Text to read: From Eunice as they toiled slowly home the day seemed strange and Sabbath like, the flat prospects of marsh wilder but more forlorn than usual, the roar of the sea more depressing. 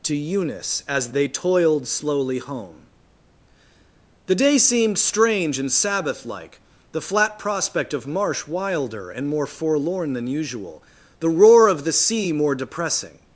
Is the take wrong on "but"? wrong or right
wrong